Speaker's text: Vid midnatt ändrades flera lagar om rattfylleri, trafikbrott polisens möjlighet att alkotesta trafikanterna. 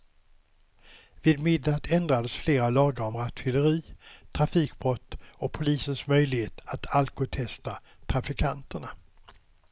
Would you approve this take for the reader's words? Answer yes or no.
no